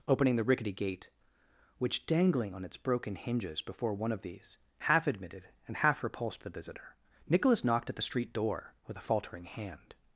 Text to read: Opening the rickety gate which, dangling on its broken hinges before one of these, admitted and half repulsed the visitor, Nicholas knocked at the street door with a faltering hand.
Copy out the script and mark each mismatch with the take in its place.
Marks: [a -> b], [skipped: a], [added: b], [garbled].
Opening the rickety gate which, dangling on its broken hinges before one of these, [added: half] admitted and half repulsed the visitor, Nicholas knocked at the street door with a faltering hand.